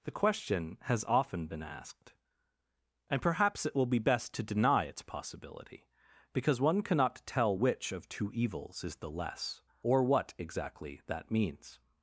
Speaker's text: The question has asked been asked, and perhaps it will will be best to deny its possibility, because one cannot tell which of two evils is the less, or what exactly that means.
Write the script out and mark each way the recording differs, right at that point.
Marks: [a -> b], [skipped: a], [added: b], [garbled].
The question has [asked -> often] been asked, and perhaps it will [skipped: will] be best to deny its possibility, because one cannot tell which of two evils is the less, or what exactly that means.